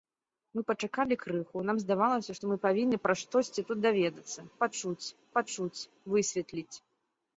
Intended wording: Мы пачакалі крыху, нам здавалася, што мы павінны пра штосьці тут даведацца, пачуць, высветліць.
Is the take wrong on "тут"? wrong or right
right